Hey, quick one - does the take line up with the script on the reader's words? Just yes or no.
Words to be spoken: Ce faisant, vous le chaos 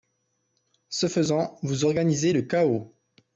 no